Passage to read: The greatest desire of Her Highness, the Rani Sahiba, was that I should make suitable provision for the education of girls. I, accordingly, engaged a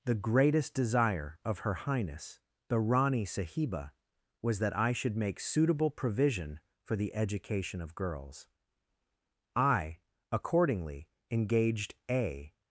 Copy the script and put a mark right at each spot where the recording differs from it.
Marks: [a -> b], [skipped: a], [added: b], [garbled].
The greatest desire of Her Highness, the Rani Sahiba, was that I should make suitable provision for the education of girls. I, accordingly, engaged a